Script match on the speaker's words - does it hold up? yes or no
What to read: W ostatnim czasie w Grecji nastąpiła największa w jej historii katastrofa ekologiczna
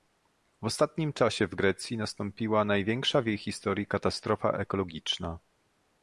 yes